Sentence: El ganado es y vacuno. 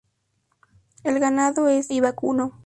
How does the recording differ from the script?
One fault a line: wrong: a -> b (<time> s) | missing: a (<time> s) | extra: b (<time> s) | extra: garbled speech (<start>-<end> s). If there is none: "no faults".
no faults